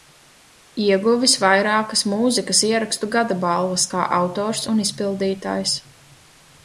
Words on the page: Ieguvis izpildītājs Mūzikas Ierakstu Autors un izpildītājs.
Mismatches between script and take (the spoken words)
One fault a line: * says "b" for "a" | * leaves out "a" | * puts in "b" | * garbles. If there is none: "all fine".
* says "vairākas" for "izpildītājs"
* puts in "Gada balvas kā"